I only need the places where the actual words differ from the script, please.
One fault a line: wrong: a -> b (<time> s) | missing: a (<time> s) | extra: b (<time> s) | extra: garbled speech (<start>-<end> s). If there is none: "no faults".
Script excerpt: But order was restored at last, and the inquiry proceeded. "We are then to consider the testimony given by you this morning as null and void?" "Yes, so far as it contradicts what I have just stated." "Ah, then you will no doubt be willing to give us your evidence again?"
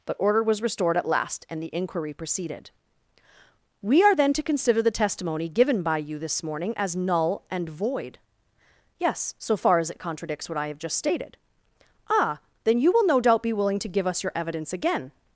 no faults